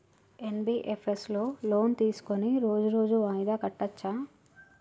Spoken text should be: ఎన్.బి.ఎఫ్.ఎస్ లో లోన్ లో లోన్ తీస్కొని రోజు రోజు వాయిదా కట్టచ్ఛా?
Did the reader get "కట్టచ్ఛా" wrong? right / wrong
right